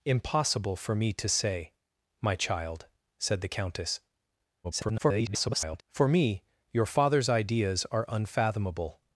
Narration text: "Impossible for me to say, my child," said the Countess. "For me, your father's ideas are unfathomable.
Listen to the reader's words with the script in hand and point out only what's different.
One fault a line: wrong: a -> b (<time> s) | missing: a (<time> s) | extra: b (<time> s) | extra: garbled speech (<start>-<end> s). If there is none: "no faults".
extra: garbled speech (4.6-5.8 s)